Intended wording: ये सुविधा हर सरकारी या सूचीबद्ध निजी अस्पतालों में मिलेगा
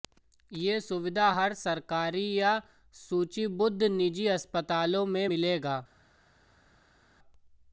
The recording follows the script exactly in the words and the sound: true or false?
true